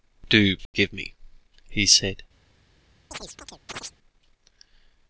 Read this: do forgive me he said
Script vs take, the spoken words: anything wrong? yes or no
no